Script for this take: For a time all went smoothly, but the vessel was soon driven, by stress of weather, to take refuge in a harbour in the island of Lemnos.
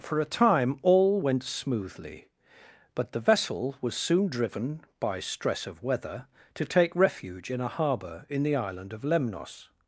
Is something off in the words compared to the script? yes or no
no